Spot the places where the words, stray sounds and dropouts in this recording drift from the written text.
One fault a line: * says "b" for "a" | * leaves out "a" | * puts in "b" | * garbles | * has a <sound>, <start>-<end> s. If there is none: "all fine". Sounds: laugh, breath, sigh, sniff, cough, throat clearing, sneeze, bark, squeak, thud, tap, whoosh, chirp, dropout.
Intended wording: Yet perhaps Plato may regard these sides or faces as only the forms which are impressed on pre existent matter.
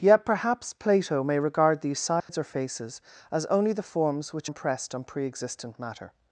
* has a dropout, 2.2-2.3 s
* leaves out "are"